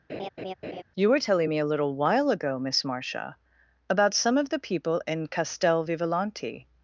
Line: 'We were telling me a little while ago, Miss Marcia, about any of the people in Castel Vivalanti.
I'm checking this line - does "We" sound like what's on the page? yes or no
no